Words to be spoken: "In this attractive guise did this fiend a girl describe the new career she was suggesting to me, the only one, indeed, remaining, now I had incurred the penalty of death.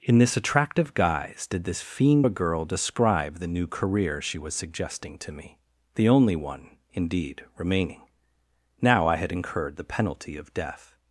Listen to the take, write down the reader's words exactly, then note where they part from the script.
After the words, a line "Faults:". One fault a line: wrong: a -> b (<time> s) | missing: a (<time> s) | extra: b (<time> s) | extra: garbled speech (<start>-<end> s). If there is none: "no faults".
"In this attractive guise did this fiend a girl describe the new career she was suggesting to me, the only one, indeed, remaining, now I had incurred the penalty of death.
Faults:
no faults